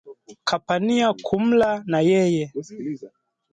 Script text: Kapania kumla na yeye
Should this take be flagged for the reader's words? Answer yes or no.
no